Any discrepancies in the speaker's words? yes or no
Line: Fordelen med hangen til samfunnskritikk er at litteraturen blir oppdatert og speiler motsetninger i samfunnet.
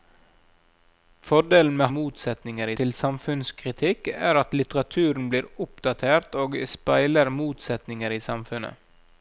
yes